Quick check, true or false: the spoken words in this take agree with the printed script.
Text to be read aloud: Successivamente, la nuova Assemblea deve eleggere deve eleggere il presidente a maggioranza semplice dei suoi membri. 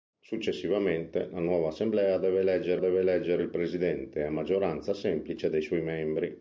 true